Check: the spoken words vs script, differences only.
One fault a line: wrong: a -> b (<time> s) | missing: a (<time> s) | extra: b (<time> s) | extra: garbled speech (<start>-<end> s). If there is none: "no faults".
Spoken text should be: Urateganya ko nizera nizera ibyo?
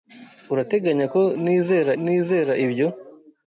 no faults